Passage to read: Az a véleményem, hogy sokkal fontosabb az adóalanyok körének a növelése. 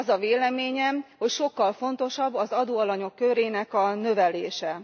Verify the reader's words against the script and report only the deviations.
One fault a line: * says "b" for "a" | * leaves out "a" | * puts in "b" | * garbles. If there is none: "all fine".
all fine